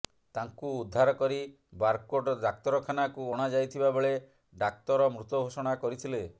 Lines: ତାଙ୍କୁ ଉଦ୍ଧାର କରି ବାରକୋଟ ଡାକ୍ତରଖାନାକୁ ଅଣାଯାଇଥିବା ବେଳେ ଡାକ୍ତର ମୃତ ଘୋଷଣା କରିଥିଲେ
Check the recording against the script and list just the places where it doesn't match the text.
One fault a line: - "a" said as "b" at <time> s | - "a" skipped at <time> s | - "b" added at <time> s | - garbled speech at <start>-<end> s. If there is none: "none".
none